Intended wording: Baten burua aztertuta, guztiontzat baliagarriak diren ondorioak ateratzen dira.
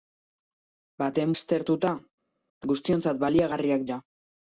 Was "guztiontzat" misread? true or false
false